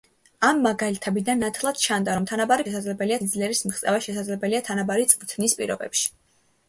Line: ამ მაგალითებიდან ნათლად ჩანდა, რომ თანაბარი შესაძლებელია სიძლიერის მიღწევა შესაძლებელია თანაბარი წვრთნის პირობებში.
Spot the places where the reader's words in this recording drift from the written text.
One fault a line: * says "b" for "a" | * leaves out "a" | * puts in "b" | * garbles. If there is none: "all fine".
all fine